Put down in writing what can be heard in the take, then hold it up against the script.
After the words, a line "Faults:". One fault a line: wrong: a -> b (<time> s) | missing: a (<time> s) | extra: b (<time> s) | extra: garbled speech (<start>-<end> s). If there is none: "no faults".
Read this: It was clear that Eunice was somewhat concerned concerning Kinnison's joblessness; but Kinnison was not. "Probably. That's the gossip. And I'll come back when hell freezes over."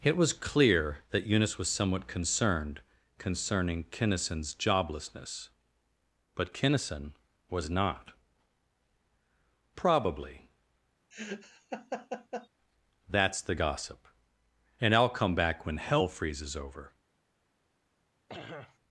It was clear that Eunice was somewhat concerned concerning Kinnison's joblessness; but Kinnison was not. "Probably. That's the gossip. And I'll come back when hell freezes over."
Faults:
no faults